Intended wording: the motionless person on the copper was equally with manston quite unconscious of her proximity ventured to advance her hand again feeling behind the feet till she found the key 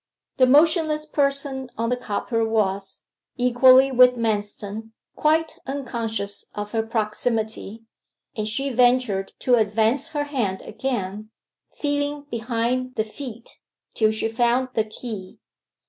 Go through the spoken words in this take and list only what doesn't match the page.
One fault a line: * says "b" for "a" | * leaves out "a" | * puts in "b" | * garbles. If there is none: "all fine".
* puts in "and she"